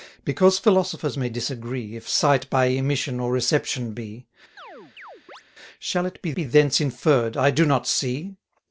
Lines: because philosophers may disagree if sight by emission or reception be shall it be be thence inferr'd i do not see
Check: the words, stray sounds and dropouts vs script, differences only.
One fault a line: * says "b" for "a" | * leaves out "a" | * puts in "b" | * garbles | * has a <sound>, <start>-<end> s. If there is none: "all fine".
* has a chirp, 4.6-5.4 s